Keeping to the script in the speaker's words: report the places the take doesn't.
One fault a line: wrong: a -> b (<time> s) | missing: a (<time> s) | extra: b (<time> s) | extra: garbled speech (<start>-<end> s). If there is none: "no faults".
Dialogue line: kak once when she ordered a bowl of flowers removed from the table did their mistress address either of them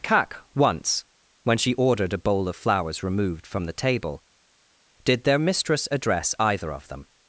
no faults